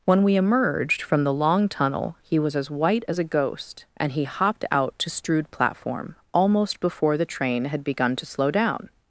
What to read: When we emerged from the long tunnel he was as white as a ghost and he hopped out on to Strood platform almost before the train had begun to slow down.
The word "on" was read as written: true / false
false